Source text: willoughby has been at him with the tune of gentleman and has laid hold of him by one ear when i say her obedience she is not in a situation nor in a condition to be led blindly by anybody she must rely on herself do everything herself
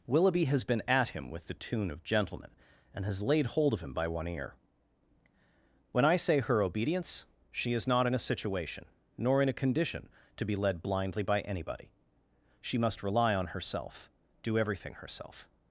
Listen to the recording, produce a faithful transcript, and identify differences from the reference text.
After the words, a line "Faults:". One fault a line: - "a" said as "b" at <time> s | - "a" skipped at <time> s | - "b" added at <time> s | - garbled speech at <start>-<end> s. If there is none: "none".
willoughby has been at him with the tune of gentleman and has laid hold of him by one ear when i say her obedience she is not in a situation nor in a condition to be led blindly by anybody she must rely on herself do everything herself
Faults:
none